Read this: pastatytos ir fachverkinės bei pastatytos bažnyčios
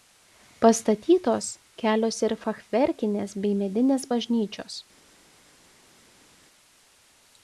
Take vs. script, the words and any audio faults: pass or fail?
fail